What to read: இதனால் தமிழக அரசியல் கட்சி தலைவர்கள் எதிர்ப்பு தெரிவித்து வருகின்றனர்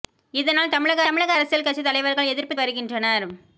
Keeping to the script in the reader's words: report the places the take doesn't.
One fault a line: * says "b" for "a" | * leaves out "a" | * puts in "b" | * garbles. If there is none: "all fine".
* puts in "தமிழக"
* leaves out "தெரிவித்து"